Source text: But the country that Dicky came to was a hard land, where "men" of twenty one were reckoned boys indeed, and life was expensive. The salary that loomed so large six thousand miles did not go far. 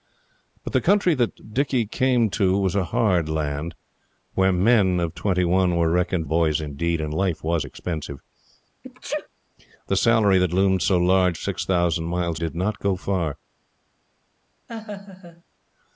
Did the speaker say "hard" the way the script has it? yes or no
yes